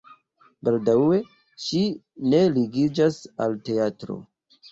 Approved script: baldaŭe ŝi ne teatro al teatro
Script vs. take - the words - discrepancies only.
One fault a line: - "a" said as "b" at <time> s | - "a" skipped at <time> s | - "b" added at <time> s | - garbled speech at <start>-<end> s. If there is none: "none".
- "teatro" said as "ligiĝas" at 2.5 s